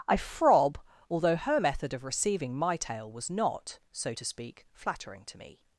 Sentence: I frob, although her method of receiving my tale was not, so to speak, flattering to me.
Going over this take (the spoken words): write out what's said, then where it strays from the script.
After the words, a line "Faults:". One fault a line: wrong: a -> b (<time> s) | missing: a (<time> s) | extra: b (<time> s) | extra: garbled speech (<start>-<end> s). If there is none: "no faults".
I frob, although her method of receiving my tale was not, so to speak, flattering to me.
Faults:
no faults